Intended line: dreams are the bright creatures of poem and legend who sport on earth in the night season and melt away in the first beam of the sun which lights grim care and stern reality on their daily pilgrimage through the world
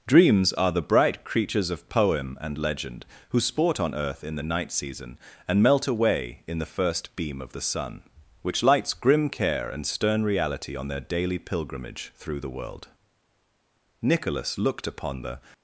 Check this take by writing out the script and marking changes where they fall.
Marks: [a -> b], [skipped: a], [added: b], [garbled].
dreams are the bright creatures of poem and legend who sport on earth in the night season and melt away in the first beam of the sun which lights grim care and stern reality on their daily pilgrimage through the world [added: nicholas looked upon the]